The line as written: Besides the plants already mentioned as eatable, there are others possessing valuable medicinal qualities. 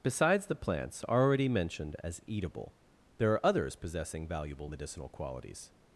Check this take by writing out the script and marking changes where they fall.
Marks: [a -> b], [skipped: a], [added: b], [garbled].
Besides the plants already mentioned as eatable, there are others possessing valuable medicinal qualities.